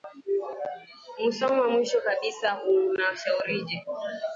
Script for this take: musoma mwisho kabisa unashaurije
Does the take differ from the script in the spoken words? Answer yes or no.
no